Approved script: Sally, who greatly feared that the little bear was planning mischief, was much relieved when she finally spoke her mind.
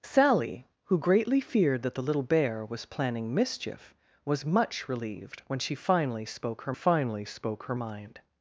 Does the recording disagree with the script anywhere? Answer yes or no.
yes